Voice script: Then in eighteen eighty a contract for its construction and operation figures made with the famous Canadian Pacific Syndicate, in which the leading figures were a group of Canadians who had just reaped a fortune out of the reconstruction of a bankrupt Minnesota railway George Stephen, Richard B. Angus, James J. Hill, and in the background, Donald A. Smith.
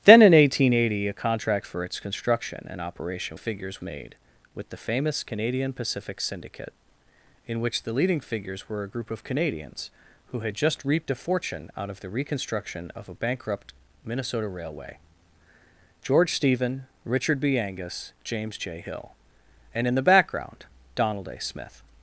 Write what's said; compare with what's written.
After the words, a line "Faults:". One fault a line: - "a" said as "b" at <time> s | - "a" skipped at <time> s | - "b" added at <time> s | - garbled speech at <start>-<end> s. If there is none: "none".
Then in eighteen eighty a contract for its construction and operation figures made with the famous Canadian Pacific Syndicate, in which the leading figures were a group of Canadians who had just reaped a fortune out of the reconstruction of a bankrupt Minnesota railway George Stephen, Richard B. Angus, James J. Hill, and in the background, Donald A. Smith.
Faults:
none